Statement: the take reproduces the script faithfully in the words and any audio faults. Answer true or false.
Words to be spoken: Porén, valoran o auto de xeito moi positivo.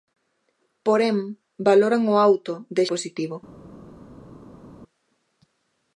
false